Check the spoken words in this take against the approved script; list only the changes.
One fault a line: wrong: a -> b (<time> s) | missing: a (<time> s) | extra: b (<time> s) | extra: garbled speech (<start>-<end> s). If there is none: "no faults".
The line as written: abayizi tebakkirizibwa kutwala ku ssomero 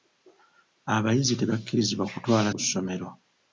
no faults